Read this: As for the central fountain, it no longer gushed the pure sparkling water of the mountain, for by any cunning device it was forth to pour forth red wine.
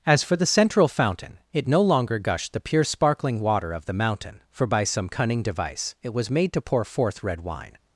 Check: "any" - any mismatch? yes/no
yes